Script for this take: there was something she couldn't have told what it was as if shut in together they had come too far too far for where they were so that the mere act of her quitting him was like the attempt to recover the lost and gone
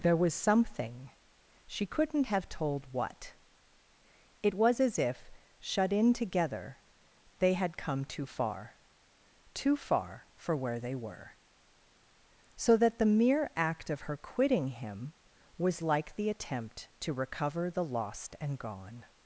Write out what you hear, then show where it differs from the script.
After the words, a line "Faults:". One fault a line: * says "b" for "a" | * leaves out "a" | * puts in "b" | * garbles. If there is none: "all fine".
there was something she couldn't have told what it was as if shut in together they had come too far too far for where they were so that the mere act of her quitting him was like the attempt to recover the lost and gone
Faults:
all fine